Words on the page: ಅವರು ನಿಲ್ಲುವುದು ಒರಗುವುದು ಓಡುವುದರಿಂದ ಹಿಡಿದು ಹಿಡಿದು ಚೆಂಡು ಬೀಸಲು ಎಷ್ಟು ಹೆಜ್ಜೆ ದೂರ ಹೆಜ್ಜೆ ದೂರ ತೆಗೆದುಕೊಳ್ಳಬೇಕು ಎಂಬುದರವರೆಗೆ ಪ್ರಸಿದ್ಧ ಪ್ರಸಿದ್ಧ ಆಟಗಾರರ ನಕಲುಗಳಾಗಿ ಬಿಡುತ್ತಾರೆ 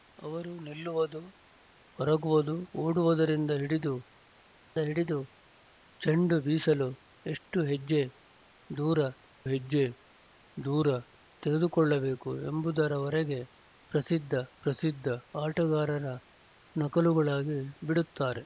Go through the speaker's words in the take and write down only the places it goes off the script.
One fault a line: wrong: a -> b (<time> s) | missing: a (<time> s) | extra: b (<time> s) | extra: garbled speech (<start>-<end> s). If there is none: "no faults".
no faults